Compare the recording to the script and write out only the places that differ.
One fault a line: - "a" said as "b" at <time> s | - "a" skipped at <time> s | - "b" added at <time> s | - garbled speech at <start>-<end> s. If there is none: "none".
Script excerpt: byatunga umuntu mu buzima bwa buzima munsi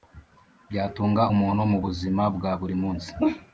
- "buzima" said as "buri" at 2.6 s